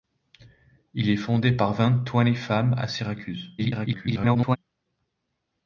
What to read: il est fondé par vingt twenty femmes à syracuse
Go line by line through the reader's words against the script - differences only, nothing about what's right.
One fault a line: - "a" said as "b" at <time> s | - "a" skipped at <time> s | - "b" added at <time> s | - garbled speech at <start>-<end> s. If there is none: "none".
- garbled speech at 3.6-4.6 s